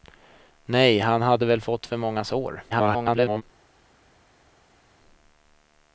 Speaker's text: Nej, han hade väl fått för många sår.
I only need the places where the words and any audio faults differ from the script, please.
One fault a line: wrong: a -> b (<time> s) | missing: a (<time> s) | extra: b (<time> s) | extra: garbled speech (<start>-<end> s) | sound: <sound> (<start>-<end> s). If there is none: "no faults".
extra: garbled speech (2.7-3.4 s)